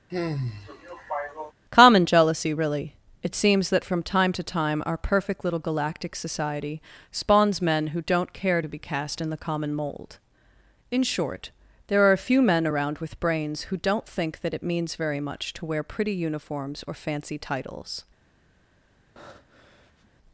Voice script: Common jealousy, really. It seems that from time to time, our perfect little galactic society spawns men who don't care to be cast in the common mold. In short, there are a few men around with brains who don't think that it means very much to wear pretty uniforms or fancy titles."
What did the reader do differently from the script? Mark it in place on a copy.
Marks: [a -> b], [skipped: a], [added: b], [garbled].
Common jealousy, really. It seems that from time to time, our perfect little galactic society spawns men who don't care to be cast in the common mold. In short, there are a few men around with brains who don't think that it means very much to wear pretty uniforms or fancy titles."